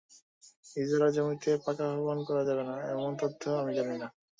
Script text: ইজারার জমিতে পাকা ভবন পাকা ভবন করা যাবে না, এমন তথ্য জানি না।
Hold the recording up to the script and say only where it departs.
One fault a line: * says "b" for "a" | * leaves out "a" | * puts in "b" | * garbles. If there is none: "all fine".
* leaves out "পাকা ভবন"
* puts in "আমি"